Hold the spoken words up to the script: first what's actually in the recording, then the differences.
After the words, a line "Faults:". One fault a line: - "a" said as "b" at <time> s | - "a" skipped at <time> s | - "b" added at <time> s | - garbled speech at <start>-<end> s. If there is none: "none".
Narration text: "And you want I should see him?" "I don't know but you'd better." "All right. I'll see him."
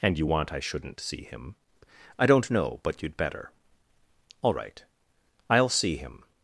"And you want I shouldn't see him?" "I don't know but you'd better." "All right. I'll see him."
Faults:
- "should" said as "shouldn't" at 0.6 s